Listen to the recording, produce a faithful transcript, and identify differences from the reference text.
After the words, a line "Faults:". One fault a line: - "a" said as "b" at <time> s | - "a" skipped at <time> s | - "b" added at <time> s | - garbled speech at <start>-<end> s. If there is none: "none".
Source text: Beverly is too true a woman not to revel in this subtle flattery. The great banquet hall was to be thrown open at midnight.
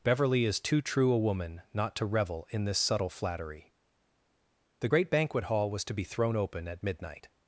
Beverly is too true a woman not to revel in this subtle flattery. The great banquet hall was to be thrown open at midnight.
Faults:
none